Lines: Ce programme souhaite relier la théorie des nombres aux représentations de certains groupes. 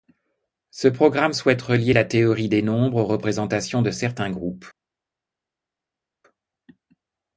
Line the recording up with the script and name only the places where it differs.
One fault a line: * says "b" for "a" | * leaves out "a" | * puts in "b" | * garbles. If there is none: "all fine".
all fine